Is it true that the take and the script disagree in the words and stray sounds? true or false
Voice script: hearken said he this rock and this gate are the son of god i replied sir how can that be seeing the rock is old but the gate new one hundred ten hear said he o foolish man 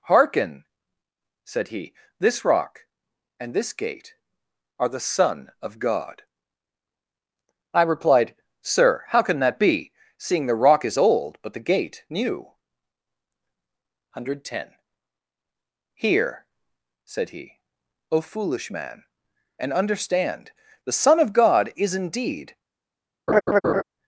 true